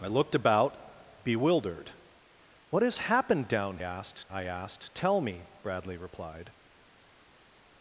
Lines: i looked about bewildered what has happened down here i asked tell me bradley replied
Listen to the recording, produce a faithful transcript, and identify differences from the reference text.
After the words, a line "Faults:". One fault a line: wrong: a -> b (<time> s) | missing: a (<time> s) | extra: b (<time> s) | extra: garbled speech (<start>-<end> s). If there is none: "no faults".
i looked about bewildered what has happened down asked i asked tell me bradley replied
Faults:
wrong: here -> asked (3.8 s)